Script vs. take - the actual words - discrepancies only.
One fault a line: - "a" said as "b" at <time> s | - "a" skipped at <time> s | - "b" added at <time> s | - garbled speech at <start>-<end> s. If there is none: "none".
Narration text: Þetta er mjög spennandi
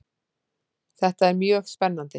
none